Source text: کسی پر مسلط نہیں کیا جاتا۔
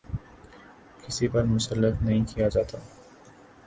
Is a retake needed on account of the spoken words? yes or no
no